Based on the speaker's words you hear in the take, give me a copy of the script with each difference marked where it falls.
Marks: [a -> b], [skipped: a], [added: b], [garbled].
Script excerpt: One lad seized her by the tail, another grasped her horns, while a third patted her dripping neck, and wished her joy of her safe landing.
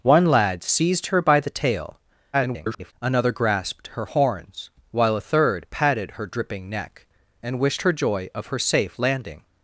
One lad seized her by the tail, [garbled] another grasped her horns, while a third patted her dripping neck, and wished her joy of her safe landing.